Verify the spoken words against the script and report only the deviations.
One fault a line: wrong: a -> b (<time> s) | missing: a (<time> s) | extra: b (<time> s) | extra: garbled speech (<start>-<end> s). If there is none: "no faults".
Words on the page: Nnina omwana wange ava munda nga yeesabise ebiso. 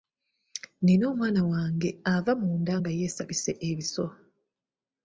no faults